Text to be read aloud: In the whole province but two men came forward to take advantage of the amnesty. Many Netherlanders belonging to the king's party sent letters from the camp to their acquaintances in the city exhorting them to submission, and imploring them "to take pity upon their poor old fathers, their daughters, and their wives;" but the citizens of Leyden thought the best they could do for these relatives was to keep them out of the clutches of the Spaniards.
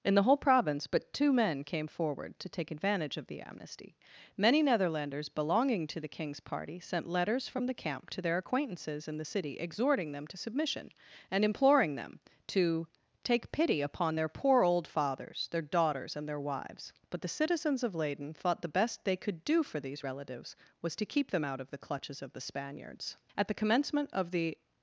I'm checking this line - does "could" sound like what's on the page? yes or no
yes